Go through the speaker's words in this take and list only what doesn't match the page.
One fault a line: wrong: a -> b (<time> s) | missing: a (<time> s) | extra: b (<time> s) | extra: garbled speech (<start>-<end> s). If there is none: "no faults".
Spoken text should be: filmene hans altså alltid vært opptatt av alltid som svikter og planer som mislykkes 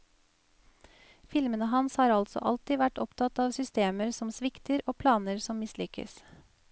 extra: har (2.0 s)
wrong: alltid -> systemer (3.6 s)